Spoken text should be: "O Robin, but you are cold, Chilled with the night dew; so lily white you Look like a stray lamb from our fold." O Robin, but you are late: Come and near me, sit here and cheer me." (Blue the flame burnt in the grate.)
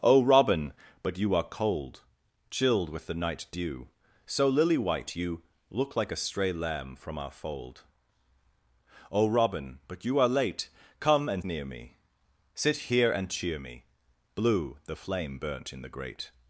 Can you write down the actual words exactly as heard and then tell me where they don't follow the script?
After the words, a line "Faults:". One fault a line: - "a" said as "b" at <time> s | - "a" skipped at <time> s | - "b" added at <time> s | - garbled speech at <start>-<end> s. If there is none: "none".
"O Robin, but you are cold, Chilled with the night dew; so lily white you Look like a stray lamb from our fold." O Robin, but you are late: Come and near me, sit here and cheer me." (Blue the flame burnt in the grate.)
Faults:
none